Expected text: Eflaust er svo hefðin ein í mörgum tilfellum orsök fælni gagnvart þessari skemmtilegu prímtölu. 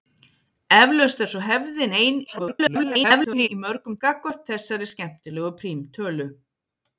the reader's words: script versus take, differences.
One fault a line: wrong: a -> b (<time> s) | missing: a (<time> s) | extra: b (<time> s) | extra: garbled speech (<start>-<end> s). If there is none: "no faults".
extra: garbled speech (2.3-3.5 s)
missing: tilfellum orsök fælni (4.0 s)